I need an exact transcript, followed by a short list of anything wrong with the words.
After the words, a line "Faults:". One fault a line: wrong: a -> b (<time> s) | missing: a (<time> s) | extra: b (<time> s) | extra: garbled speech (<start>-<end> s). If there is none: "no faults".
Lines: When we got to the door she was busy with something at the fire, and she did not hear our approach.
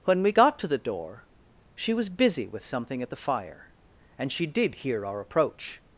When we got to the door she was busy with something at the fire, and she did hear our approach.
Faults:
missing: not (4.7 s)